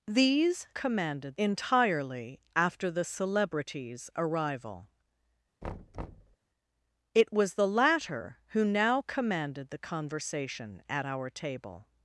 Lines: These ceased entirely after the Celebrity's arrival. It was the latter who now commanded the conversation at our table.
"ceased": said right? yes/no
no